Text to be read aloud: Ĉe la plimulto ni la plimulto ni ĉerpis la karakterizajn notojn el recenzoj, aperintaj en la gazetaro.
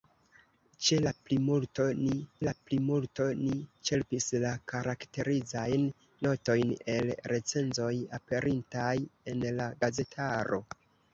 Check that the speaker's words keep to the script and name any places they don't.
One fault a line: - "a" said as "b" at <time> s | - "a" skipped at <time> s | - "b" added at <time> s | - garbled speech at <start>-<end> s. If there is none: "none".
none